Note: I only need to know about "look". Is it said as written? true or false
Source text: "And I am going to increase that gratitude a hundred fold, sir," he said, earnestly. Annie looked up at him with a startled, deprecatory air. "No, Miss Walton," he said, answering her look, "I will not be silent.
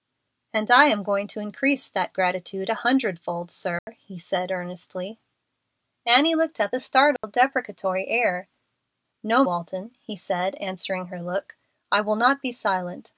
true